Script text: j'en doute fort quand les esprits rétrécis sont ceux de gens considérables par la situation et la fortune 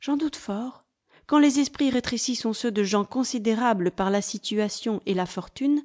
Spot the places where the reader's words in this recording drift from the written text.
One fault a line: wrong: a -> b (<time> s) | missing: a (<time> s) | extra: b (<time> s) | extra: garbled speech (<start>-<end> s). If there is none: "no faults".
no faults